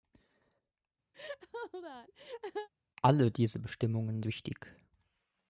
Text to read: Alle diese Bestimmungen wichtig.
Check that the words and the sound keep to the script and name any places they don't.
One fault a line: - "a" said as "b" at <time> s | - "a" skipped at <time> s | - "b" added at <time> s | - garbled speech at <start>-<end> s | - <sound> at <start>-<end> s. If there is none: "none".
- laugh at 1.1-2.7 s